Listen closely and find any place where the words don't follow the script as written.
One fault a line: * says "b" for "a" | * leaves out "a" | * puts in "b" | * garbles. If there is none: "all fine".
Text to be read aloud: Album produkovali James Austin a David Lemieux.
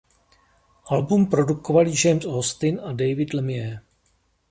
all fine